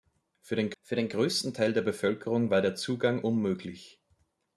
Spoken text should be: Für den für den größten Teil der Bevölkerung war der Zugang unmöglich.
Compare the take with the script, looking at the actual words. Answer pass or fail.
pass